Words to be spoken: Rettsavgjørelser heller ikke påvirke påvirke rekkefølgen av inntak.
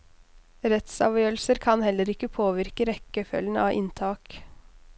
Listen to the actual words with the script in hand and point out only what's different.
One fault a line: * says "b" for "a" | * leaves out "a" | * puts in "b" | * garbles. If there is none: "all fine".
* puts in "kan"
* leaves out "påvirke"